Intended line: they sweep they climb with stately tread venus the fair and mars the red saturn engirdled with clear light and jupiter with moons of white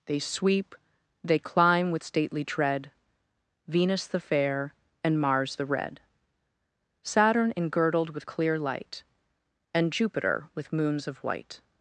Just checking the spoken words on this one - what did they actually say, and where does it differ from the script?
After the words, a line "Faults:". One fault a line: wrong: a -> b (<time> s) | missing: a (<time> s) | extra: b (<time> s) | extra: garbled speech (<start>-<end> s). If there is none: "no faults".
they sweep they climb with stately tread venus the fair and mars the red saturn engirdled with clear light and jupiter with moons of white
Faults:
no faults